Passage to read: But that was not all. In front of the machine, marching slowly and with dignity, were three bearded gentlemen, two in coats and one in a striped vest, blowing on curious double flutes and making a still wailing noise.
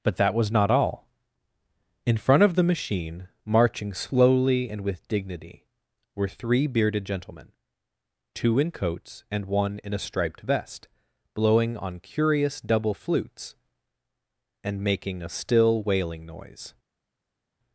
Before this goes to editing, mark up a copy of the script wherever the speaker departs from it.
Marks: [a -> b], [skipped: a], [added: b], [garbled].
But that was not all. In front of the machine, marching slowly and with dignity, were three bearded gentlemen, two in coats and one in a striped vest, blowing on curious double flutes and making a still wailing noise.